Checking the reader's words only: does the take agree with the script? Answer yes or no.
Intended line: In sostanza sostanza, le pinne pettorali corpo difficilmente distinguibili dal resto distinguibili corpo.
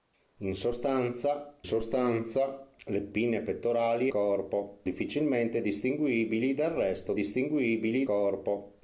yes